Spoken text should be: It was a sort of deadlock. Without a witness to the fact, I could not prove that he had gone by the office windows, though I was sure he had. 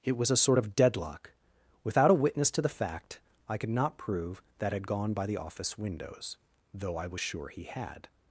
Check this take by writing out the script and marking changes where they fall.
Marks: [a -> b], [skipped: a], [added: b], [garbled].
It was a sort of deadlock. Without a witness to the fact, I could not prove that [skipped: he] had gone by the office windows, though I was sure he had.